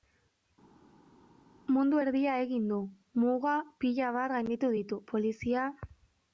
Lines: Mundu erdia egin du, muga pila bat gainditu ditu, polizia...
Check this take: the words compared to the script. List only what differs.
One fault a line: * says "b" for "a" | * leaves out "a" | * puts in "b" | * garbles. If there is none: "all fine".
all fine